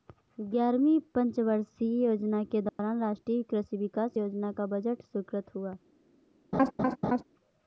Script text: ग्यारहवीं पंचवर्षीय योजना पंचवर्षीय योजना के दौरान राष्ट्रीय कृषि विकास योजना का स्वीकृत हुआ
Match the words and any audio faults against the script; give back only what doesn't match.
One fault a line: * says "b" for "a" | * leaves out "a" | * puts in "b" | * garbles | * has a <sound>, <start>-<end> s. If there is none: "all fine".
* leaves out "पंचवर्षीय योजना"
* has a dropout, 2.7-2.8 s
* puts in "बजट"
* has a laugh, 6.5-7.2 s